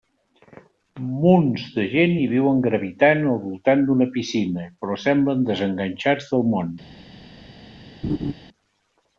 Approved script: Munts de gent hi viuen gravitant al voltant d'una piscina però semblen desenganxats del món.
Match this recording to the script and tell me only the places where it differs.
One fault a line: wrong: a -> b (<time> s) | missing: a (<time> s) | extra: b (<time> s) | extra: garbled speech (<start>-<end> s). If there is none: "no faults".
no faults